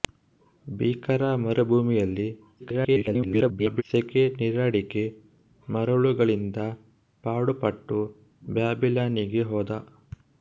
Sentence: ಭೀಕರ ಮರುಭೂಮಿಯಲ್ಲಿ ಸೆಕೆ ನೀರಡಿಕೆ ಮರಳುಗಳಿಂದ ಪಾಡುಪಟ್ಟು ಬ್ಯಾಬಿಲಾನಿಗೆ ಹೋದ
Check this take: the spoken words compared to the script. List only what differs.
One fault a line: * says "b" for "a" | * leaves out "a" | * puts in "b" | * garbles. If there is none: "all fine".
* garbles